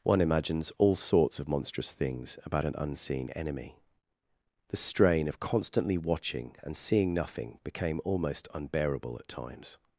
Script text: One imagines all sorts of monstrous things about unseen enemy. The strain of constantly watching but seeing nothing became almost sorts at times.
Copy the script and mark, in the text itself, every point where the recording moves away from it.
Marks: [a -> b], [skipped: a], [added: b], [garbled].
One imagines all sorts of monstrous things about [added: an] unseen enemy. The strain of constantly watching [but -> and] seeing nothing became almost [sorts -> unbearable] at times.